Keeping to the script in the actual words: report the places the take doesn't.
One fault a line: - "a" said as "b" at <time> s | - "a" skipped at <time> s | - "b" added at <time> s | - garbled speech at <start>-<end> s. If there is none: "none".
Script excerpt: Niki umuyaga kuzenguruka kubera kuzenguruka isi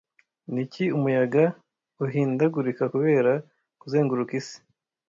- "kuzenguruka" said as "uhindagurika" at 2.0 s